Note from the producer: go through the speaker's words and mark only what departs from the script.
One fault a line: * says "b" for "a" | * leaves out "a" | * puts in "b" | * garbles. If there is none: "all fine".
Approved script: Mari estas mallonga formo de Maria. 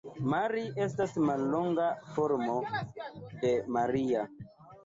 all fine